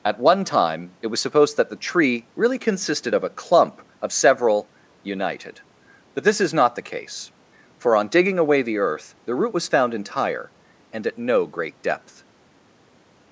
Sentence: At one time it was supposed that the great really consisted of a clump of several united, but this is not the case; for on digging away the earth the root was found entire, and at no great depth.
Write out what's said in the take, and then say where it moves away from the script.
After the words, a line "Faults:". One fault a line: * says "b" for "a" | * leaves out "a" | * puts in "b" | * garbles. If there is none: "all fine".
At one time it was supposed that the tree really consisted of a clump of several united, but this is not the case; for on digging away the earth the root was found entire, and at no great depth.
Faults:
* says "tree" for "great"